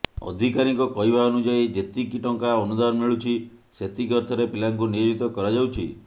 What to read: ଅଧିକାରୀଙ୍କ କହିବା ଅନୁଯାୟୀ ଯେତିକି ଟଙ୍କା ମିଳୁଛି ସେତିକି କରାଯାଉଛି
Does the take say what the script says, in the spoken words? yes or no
no